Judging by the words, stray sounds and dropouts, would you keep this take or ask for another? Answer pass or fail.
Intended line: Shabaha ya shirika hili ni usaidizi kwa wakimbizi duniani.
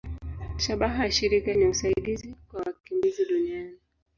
fail